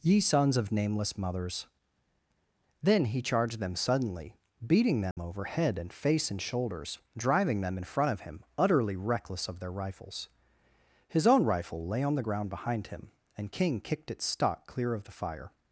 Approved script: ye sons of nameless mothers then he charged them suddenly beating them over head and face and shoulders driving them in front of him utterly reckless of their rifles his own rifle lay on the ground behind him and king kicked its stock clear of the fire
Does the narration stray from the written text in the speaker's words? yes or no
no